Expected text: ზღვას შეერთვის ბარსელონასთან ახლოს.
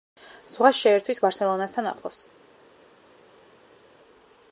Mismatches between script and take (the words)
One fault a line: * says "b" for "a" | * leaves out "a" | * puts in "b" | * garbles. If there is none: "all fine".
all fine